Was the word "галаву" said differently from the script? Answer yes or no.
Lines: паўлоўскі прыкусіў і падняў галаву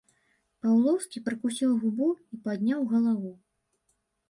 no